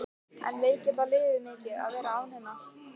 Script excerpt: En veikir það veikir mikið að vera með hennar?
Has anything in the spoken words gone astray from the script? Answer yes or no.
yes